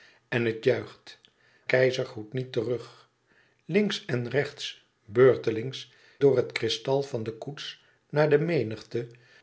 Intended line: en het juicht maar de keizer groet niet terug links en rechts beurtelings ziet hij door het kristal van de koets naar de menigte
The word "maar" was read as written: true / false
false